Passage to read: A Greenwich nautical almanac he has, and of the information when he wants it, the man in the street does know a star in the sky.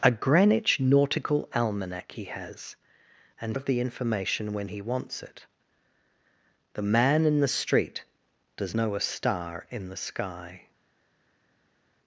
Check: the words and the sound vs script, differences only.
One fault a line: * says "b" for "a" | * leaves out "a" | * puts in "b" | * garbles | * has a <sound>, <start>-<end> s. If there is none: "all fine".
all fine